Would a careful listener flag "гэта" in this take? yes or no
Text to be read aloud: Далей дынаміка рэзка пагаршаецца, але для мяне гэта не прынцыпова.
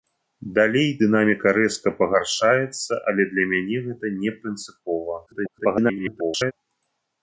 no